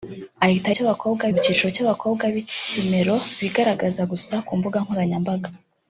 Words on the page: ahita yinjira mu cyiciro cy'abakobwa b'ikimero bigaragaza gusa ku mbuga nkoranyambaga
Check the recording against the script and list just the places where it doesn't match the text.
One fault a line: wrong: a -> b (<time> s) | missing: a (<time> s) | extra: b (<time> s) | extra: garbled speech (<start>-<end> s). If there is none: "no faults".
wrong: yinjira -> cy'abakobwa (0.8 s)